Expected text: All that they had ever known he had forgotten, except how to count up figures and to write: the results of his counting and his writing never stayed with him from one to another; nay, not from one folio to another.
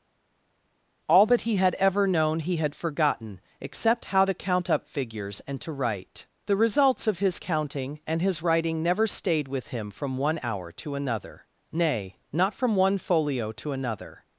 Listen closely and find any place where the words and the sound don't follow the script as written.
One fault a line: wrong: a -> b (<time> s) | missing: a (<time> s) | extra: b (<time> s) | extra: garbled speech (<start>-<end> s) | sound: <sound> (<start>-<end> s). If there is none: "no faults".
wrong: they -> he (1.4 s)
extra: hour (10.4 s)